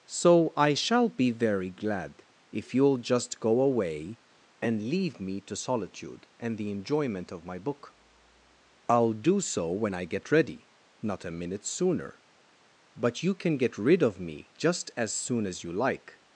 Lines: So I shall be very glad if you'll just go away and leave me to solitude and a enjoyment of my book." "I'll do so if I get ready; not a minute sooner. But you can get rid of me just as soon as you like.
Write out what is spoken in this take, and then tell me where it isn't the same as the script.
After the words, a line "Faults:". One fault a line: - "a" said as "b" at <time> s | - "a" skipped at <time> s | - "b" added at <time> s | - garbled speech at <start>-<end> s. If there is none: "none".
So I shall be very glad if you'll just go away and leave me to solitude and the enjoyment of my book." "I'll do so when I get ready; not a minute sooner. But you can get rid of me just as soon as you like.
Faults:
- "a" said as "the" at 6.6 s
- "if" said as "when" at 9.7 s